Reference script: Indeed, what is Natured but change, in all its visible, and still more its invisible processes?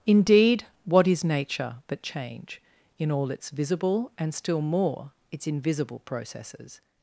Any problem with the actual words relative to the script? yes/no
yes